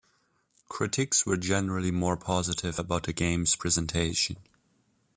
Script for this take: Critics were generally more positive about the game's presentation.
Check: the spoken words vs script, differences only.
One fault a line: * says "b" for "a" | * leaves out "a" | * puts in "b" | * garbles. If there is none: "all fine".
all fine